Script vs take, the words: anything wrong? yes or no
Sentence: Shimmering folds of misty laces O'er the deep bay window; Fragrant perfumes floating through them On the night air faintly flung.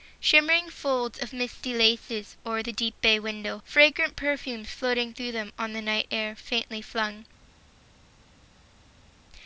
no